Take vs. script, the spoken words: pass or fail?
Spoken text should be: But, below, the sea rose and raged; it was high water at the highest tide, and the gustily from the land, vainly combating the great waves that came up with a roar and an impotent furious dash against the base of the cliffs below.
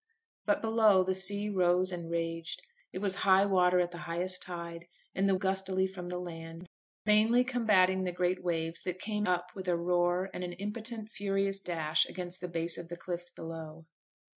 pass